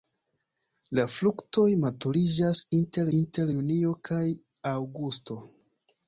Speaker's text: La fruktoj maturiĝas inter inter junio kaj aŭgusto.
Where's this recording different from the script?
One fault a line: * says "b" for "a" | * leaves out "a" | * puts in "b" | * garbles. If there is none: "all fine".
all fine